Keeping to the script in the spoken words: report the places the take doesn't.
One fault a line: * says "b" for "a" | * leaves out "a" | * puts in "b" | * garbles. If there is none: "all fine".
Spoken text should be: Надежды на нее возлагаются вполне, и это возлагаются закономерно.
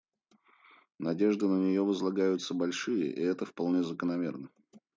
* says "большие" for "вполне"
* says "вполне" for "возлагаются"